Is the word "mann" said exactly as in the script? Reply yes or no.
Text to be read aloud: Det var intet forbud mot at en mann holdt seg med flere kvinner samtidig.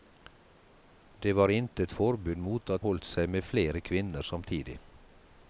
no